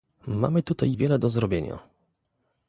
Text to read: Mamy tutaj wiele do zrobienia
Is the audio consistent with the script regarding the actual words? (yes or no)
yes